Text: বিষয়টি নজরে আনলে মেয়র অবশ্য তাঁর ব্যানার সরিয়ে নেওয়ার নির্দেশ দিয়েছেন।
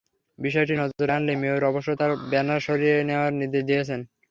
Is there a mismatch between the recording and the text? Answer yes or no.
no